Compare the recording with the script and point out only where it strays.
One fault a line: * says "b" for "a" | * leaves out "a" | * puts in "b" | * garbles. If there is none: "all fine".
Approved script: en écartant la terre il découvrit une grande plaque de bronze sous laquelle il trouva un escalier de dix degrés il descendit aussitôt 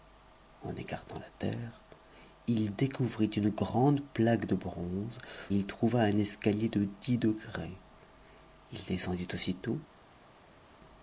* leaves out "sous laquelle"